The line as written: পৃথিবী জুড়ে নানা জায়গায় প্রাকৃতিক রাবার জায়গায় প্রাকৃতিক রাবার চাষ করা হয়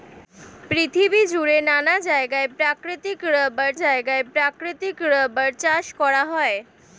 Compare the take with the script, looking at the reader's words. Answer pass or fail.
pass